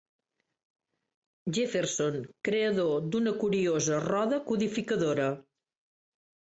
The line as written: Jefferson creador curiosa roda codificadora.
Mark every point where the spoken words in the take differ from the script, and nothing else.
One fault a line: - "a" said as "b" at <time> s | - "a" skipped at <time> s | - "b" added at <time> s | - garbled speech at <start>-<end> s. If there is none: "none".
- "d'una" added at 3.1 s